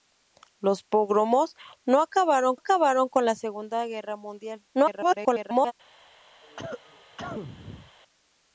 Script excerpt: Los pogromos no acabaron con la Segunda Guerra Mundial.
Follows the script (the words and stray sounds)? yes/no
no